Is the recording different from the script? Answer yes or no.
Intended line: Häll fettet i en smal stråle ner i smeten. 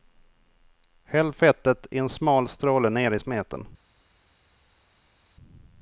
no